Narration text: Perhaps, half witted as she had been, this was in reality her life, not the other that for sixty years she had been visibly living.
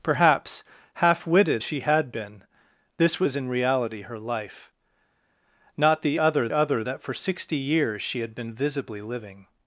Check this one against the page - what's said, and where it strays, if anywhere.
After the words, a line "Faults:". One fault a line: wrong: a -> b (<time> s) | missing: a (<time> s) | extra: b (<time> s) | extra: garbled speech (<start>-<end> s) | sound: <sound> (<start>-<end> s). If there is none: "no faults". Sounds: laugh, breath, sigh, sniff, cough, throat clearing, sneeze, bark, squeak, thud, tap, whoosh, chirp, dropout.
Perhaps, half witted she had been, this was in reality her life, not the other other that for sixty years she had been visibly living.
Faults:
missing: as (1.6 s)
extra: other (6.5 s)